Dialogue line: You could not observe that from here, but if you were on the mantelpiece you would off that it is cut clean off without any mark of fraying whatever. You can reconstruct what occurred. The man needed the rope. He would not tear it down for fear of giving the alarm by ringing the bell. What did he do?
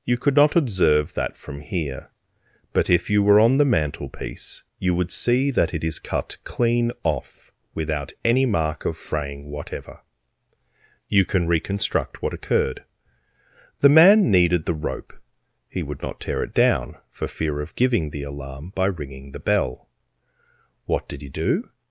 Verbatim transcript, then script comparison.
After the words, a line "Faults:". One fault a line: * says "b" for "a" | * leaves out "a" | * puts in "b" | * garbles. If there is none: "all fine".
You could not observe that from here, but if you were on the mantelpiece you would see that it is cut clean off without any mark of fraying whatever. You can reconstruct what occurred. The man needed the rope. He would not tear it down for fear of giving the alarm by ringing the bell. What did he do?
Faults:
* says "see" for "off"